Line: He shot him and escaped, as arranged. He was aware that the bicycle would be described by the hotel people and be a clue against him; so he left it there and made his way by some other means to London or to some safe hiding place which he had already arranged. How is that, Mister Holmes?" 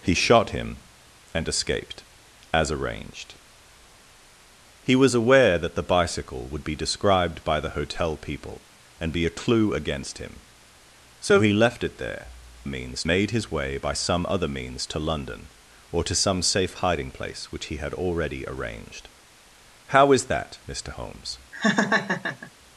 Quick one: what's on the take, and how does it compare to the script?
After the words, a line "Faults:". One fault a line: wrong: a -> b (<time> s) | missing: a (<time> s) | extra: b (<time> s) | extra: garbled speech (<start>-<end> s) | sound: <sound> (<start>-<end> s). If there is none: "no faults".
He shot him and escaped, as arranged. He was aware that the bicycle would be described by the hotel people and be a clue against him; so he left it there means made his way by some other means to London or to some safe hiding place which he had already arranged. How is that, Mister Holmes?"
Faults:
wrong: and -> means (12.6 s)
sound: laugh (21.5-22.5 s)